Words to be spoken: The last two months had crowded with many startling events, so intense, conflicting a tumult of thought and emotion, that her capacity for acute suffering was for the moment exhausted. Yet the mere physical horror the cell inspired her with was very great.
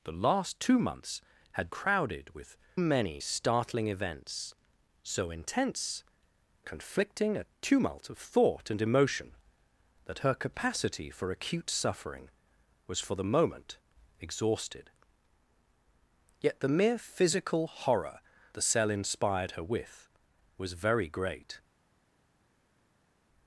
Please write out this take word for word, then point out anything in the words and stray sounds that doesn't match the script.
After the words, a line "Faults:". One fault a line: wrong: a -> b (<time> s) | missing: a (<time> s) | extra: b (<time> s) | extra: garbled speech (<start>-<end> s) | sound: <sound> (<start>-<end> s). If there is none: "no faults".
The last two months had crowded with many startling events, so intense, conflicting a tumult of thought and emotion, that her capacity for acute suffering was for the moment exhausted. Yet the mere physical horror the cell inspired her with was very great.
Faults:
no faults